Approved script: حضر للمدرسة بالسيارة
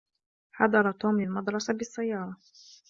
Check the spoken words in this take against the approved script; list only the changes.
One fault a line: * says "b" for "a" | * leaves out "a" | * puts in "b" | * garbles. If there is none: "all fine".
* puts in "توم"